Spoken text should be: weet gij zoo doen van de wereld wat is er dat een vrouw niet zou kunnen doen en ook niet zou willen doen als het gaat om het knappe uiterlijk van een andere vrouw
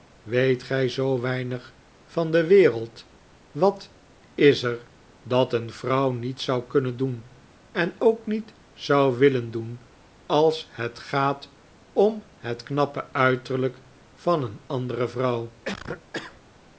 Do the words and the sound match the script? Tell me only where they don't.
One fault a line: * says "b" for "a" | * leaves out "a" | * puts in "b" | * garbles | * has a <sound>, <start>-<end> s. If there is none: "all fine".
* says "weinig" for "doen"
* has a cough, 15.7-16.4 s